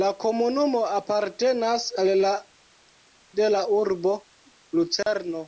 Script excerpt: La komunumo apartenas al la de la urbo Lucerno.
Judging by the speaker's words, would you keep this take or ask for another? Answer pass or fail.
pass